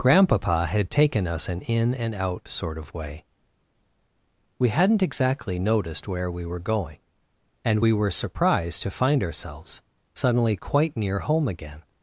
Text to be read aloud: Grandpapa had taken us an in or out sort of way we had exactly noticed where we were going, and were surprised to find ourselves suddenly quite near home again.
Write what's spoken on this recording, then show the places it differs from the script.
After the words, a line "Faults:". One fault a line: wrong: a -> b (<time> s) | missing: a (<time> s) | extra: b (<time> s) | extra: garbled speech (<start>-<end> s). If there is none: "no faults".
Grandpapa had taken us an in and out sort of way we hadn't exactly noticed where we were going, and we were surprised to find ourselves suddenly quite near home again.
Faults:
wrong: or -> and (1.9 s)
wrong: had -> hadn't (4.7 s)
extra: we (7.8 s)